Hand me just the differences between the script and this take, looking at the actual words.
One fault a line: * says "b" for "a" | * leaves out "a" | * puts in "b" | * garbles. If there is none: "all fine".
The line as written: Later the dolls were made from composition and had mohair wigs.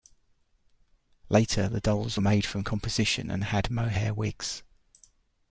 all fine